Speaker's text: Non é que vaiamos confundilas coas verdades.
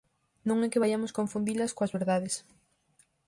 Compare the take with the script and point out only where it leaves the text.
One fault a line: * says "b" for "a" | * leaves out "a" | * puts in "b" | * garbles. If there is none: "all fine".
all fine